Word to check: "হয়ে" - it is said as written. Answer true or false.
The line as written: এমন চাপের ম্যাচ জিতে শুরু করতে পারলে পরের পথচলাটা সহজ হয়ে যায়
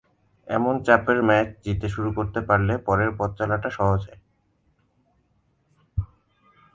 false